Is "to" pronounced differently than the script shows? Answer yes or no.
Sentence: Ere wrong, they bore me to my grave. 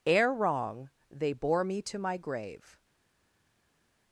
no